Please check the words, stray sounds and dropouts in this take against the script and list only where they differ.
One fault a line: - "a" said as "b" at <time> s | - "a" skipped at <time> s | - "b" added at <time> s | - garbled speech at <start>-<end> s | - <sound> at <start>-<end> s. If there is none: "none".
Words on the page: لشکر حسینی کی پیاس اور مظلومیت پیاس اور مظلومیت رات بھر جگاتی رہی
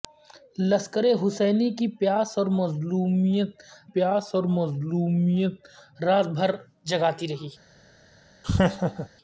- laugh at 8.4-9.1 s